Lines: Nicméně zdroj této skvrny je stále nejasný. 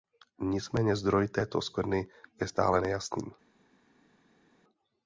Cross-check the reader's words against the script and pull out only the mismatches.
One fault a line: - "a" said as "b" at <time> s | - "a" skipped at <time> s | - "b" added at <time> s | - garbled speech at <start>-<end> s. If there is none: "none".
none